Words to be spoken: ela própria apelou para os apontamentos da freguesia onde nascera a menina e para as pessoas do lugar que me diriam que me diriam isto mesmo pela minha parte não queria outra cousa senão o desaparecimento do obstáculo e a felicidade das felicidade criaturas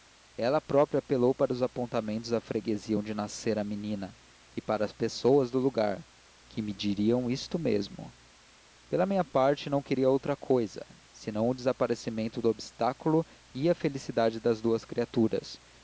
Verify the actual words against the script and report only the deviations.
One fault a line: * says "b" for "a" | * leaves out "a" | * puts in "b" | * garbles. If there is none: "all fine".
* leaves out "que me diriam"
* says "duas" for "felicidade"